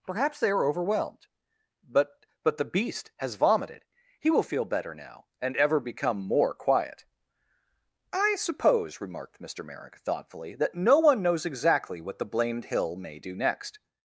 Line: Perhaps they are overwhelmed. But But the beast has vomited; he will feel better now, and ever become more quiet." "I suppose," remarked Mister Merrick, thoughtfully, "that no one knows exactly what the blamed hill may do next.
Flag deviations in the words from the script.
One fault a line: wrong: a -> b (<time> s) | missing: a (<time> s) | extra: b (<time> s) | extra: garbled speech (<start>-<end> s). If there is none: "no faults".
no faults